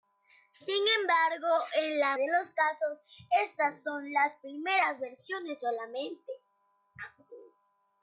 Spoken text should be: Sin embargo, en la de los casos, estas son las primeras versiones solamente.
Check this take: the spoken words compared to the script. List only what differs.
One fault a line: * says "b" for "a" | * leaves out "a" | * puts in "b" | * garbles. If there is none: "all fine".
all fine